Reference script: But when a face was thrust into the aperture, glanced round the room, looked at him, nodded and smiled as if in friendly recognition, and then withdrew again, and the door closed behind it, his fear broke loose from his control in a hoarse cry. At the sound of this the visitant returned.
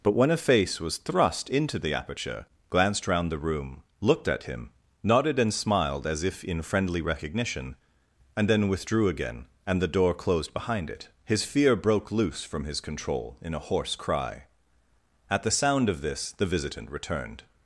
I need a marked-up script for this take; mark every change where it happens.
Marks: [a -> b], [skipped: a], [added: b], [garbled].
But when a face was thrust into the aperture, glanced round the room, looked at him, nodded and smiled as if in friendly recognition, and then withdrew again, and the door closed behind it, his fear broke loose from his control in a hoarse cry. At the sound of this the visitant returned.